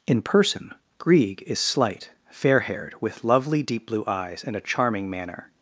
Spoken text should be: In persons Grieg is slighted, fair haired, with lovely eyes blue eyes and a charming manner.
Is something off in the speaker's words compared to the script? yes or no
yes